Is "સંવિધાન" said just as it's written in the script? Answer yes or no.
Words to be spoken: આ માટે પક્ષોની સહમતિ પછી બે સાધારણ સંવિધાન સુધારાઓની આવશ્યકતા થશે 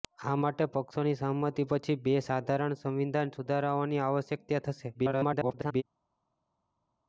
yes